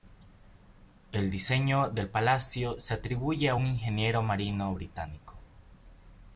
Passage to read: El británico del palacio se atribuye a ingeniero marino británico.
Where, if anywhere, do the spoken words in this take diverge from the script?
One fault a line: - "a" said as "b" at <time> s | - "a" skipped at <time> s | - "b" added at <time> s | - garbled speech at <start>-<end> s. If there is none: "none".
- "británico" said as "diseño" at 1.3 s
- "un" added at 3.5 s